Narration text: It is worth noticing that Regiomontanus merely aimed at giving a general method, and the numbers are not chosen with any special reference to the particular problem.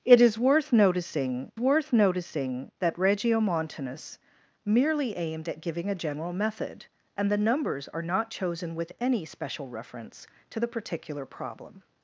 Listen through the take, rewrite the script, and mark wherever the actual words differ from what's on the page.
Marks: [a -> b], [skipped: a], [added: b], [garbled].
It is worth noticing [added: worth noticing] that Regiomontanus merely aimed at giving a general method, and the numbers are not chosen with any special reference to the particular problem.